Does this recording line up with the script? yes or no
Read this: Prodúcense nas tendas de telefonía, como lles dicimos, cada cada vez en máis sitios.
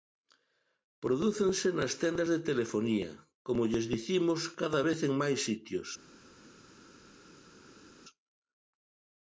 no